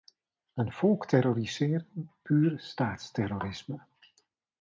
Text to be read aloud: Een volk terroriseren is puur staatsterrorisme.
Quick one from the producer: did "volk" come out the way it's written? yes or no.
yes